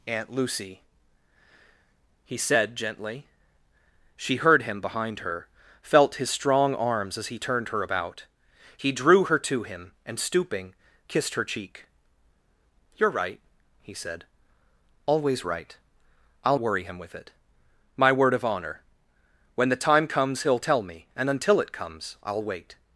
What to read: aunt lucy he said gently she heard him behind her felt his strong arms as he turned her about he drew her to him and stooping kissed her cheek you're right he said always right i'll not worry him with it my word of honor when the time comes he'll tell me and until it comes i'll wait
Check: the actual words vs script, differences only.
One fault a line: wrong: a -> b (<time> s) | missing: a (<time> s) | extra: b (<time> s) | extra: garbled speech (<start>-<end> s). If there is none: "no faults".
missing: not (16.6 s)